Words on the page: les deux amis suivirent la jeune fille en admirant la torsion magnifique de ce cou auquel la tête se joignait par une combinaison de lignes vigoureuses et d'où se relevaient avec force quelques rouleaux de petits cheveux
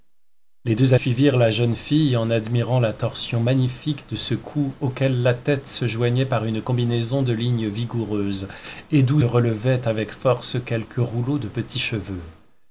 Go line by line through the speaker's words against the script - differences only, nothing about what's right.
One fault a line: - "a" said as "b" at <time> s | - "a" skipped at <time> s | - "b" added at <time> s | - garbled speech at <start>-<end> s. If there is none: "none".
- "amis" skipped at 0.9 s
- "se" skipped at 9.2 s